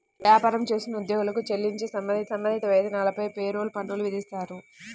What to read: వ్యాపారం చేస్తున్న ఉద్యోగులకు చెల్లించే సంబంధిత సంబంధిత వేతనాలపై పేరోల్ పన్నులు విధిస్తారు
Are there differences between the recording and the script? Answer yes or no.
no